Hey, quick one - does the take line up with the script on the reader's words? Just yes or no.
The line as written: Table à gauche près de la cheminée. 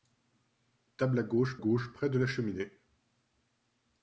no